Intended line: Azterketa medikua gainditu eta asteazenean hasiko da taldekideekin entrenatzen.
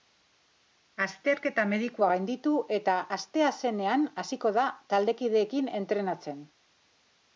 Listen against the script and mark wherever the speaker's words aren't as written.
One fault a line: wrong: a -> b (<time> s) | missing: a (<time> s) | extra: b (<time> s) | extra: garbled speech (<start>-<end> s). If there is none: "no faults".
no faults